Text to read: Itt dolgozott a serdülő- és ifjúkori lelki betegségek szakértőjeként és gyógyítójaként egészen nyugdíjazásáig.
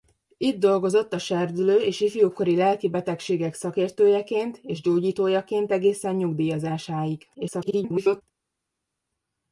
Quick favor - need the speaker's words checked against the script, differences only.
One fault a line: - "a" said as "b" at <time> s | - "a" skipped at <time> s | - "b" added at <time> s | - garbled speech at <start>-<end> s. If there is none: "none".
- garbled speech at 7.3-8.2 s